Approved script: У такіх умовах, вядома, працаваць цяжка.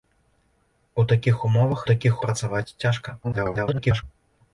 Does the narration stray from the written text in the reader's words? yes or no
yes